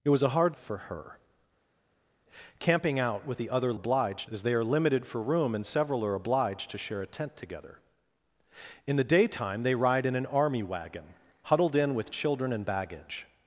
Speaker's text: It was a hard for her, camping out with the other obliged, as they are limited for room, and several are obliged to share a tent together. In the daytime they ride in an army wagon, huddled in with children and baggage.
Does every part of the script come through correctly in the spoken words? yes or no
yes